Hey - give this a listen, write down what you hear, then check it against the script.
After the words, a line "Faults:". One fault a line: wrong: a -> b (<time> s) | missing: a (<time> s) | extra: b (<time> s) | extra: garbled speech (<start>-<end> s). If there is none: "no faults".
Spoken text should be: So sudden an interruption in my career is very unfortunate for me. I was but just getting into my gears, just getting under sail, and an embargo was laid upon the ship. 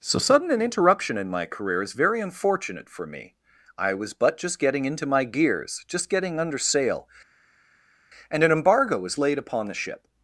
So sudden an interruption in my career is very unfortunate for me. I was but just getting into my gears, just getting under sail, and an embargo was laid upon the ship.
Faults:
no faults